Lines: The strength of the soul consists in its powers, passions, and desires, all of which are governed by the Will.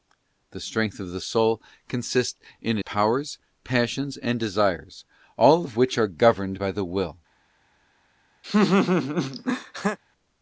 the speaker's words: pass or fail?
fail